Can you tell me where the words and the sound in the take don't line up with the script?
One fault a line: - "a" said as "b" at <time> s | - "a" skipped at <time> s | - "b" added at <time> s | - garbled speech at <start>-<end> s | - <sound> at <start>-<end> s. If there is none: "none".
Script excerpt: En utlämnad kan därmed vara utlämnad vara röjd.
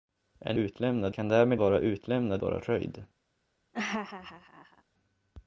- laugh at 3.7-4.8 s